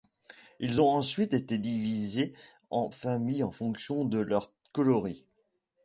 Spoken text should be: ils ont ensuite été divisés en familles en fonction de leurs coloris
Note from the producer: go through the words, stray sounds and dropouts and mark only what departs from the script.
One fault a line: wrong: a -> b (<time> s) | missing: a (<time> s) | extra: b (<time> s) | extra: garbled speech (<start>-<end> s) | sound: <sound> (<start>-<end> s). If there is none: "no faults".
no faults